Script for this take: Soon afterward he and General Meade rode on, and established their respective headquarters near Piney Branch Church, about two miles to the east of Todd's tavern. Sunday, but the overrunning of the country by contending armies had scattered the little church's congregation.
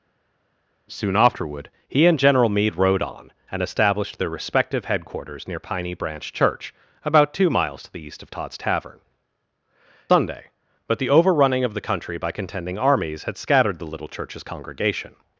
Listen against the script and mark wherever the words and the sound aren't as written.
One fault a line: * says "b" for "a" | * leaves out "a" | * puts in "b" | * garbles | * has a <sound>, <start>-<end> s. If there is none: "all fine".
all fine